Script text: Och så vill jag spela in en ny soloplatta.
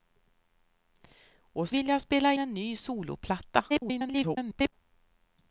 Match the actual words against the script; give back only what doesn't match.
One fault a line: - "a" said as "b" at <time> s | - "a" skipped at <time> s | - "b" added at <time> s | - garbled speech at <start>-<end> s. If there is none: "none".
- "så" skipped at 1.7 s
- "in" skipped at 2.3 s
- garbled speech at 3.7-4.7 s